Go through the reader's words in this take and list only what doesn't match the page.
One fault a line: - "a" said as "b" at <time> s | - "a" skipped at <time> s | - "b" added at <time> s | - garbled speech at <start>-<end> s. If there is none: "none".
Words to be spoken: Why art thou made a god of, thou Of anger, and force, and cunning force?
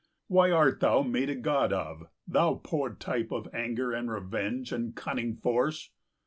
- "poor type" added at 2.6 s
- "force" said as "revenge" at 4.1 s